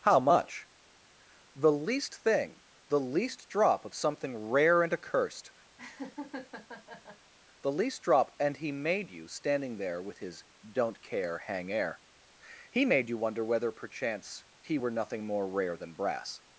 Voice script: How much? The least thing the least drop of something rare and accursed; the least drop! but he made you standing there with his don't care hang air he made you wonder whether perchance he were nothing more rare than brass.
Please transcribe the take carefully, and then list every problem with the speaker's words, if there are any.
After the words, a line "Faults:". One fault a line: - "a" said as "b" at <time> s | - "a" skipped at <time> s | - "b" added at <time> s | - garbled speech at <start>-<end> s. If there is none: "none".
How much? The least thing the least drop of something rare and accursed; the least drop! and he made you standing there with his don't care hang air he made you wonder whether perchance he were nothing more rare than brass.
Faults:
- "but" said as "and" at 8.4 s